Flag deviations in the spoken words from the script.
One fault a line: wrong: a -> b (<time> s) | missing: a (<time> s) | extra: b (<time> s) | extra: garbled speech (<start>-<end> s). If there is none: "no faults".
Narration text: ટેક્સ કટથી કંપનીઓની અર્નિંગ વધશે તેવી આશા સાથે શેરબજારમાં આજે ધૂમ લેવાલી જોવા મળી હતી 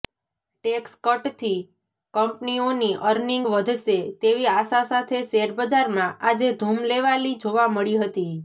no faults